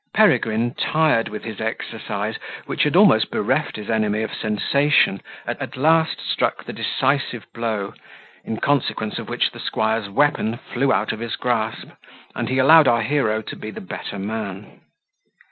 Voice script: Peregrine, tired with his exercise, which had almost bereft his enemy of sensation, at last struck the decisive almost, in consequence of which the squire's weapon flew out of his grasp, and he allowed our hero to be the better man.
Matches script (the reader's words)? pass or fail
fail